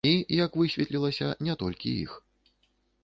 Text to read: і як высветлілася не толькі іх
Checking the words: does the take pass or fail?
pass